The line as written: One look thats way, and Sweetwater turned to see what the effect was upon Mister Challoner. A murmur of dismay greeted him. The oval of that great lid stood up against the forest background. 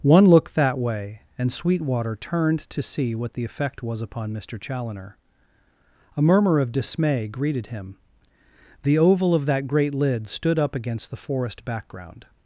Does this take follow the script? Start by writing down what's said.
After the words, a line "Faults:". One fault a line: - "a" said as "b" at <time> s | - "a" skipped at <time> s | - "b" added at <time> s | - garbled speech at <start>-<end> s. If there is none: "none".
One look that way, and Sweetwater turned to see what the effect was upon Mister Challoner. A murmur of dismay greeted him. The oval of that great lid stood up against the forest background.
Faults:
- "thats" said as "that" at 0.5 s